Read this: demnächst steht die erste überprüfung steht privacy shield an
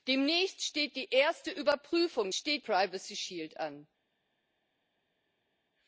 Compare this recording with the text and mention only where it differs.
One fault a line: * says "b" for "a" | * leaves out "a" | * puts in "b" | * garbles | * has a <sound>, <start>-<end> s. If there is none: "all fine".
all fine